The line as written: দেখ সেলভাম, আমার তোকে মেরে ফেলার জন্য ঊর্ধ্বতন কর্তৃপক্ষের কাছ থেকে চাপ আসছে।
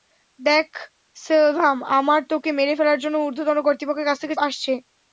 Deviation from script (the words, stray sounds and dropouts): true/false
true